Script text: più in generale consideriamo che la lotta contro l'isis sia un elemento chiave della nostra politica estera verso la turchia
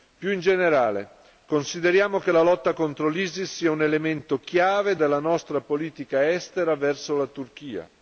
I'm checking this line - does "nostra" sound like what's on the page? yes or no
yes